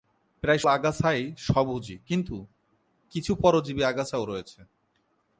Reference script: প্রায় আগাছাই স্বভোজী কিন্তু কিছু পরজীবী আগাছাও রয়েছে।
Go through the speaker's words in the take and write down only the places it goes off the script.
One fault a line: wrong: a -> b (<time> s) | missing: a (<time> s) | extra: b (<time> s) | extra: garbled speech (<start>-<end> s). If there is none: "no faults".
no faults